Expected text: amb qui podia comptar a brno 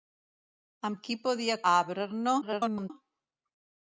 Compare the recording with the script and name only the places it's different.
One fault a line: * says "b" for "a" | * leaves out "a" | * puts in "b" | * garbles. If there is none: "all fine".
* leaves out "comptar"
* garbles